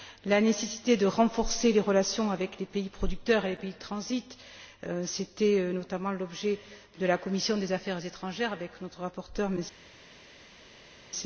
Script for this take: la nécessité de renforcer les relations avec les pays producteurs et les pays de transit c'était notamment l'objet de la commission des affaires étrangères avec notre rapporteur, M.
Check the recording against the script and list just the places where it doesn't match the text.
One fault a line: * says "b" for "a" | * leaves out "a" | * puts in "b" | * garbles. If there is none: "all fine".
all fine